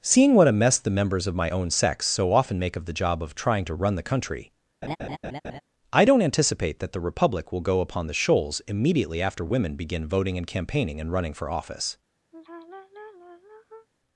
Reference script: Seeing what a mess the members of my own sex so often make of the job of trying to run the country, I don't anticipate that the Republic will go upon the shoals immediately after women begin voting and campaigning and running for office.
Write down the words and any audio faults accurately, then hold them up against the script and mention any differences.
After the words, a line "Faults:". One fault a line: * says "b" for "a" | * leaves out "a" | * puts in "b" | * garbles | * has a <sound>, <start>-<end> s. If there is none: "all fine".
Seeing what a mess the members of my own sex so often make of the job of trying to run the country, I don't anticipate that the Republic will go upon the shoals immediately after women begin voting and campaigning and running for office.
Faults:
* has a laugh, 4.8-5.6 s
* has a sigh, 12.3-13.9 s